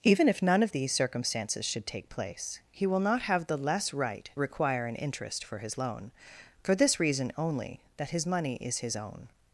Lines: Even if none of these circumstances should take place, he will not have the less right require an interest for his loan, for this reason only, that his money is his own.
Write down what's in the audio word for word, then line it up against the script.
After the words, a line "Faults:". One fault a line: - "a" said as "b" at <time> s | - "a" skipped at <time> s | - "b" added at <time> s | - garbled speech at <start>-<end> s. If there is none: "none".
Even if none of these circumstances should take place, he will not have the less right require an interest for his loan, for this reason only, that his money is his own.
Faults:
none